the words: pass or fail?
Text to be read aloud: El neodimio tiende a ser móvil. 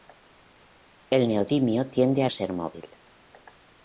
pass